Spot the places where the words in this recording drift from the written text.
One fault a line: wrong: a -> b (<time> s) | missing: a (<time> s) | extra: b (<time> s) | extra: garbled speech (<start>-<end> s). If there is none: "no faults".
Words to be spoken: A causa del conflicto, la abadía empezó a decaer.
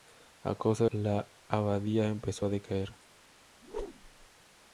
missing: del conflicto (0.8 s)